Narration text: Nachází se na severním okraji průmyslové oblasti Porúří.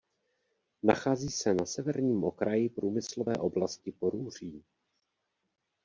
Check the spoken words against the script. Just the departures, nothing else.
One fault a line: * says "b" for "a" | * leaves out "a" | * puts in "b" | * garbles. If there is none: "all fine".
all fine